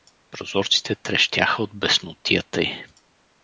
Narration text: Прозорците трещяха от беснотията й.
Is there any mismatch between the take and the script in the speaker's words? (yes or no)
no